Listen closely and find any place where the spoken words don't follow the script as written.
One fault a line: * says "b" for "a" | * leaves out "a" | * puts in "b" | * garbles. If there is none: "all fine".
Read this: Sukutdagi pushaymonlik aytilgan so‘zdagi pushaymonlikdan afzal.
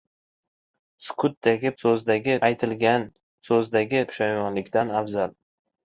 * says "so‘zdagi" for "pushaymonlik"